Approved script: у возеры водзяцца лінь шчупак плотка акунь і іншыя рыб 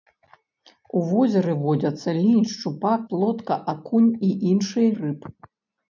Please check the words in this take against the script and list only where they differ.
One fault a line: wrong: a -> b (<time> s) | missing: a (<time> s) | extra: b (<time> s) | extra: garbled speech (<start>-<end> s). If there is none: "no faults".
no faults